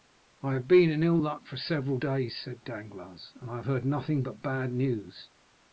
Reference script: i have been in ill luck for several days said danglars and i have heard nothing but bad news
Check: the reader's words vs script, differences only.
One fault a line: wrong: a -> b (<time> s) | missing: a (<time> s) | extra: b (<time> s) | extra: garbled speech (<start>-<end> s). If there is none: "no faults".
no faults